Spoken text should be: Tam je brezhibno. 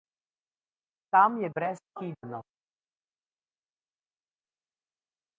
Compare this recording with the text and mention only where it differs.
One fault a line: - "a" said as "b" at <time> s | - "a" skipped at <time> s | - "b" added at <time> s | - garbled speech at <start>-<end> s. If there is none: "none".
none